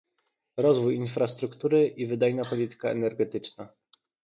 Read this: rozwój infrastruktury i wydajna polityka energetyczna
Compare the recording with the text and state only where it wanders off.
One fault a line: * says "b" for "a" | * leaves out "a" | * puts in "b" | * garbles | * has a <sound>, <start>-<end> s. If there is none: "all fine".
all fine